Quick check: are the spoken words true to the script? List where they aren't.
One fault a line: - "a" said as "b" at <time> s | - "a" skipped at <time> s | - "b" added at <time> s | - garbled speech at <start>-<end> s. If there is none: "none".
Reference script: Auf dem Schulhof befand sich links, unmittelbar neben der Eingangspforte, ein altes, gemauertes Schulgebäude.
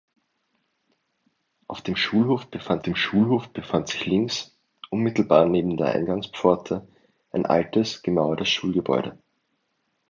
- "dem Schulhof befand" added at 2.8 s